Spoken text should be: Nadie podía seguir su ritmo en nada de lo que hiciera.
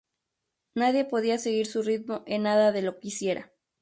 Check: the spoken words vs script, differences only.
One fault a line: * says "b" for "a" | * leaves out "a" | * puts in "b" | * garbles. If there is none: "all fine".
all fine